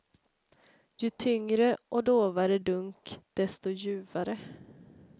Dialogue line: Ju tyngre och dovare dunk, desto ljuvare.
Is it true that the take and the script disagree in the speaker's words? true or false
false